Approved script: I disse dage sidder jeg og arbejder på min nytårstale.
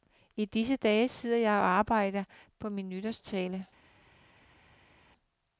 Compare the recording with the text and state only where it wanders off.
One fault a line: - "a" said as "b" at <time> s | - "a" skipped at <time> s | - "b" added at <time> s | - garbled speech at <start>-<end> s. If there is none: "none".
none